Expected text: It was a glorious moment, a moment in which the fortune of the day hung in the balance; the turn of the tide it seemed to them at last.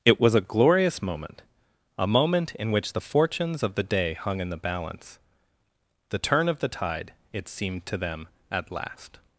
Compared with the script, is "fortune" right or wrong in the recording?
wrong